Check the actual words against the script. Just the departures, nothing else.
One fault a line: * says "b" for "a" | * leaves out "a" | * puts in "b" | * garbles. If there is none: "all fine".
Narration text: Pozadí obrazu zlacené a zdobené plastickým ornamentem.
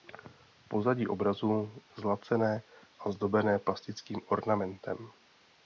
all fine